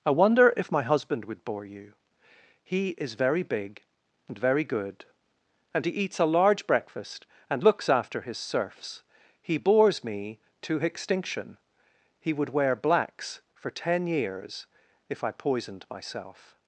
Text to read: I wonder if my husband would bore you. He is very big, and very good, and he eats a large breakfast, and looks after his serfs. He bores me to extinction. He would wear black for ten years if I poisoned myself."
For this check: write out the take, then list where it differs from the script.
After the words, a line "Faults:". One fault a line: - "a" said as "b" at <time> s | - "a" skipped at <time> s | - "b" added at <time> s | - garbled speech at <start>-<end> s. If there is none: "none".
I wonder if my husband would bore you. He is very big, and very good, and he eats a large breakfast, and looks after his serfs. He bores me to extinction. He would wear blacks for ten years if I poisoned myself."
Faults:
- "black" said as "blacks" at 12.7 s